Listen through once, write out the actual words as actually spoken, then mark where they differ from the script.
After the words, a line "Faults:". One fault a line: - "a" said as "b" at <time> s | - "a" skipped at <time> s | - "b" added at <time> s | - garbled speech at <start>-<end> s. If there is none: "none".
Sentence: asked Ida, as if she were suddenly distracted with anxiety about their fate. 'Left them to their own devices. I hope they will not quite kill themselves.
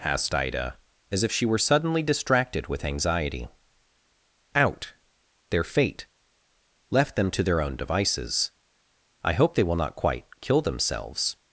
asked Ida, as if she were suddenly distracted with anxiety out their fate. 'Left them to their own devices. I hope they will not quite kill themselves.
Faults:
- "about" said as "out" at 4.5 s